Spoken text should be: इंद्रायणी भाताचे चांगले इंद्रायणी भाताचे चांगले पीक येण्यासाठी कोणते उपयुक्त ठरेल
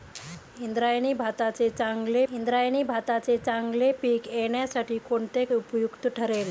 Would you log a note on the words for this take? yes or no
no